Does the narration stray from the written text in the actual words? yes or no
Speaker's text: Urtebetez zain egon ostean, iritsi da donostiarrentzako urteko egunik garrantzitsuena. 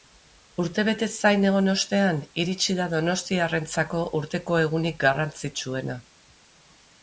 no